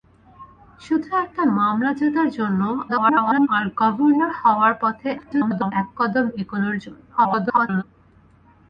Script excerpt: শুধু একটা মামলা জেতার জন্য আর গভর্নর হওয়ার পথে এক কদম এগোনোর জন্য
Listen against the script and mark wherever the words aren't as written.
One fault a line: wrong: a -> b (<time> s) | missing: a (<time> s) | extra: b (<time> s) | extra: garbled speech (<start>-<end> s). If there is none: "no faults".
extra: garbled speech (2.9-3.5 s)
extra: garbled speech (5.2-5.7 s)
extra: garbled speech (7.2-7.8 s)